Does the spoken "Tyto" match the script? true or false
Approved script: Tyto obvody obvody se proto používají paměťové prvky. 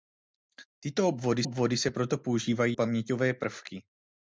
true